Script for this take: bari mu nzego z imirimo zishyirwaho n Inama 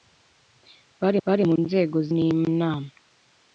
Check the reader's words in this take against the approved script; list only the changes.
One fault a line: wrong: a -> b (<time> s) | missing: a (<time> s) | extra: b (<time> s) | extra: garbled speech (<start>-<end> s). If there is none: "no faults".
extra: bari (1.2 s)
missing: imirimo zishyirwaho (2.1 s)